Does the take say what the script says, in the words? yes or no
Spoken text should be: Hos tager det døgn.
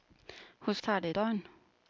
yes